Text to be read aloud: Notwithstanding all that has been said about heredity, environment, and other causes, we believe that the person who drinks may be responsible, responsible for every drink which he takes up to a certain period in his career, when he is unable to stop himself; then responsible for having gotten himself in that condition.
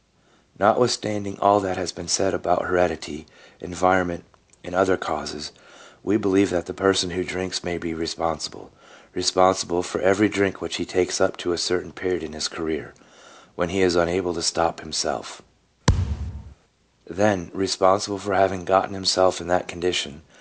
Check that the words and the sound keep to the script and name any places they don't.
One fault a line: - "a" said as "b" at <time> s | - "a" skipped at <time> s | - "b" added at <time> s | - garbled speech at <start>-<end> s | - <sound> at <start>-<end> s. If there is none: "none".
- thud at 15.9-16.5 s